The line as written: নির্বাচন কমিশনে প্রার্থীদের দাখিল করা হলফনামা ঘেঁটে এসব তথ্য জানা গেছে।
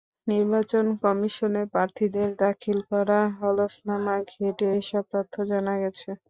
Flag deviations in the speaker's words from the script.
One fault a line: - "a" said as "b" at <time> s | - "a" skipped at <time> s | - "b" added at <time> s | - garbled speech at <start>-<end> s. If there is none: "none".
none